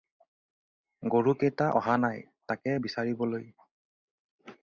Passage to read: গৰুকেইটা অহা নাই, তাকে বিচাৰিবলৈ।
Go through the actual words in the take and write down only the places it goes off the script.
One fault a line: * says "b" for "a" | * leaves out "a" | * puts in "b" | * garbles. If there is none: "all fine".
all fine